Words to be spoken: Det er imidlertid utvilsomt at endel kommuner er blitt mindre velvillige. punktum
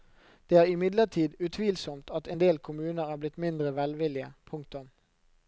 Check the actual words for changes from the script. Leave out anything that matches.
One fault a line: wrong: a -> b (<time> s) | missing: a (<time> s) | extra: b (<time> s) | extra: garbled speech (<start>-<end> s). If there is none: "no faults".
no faults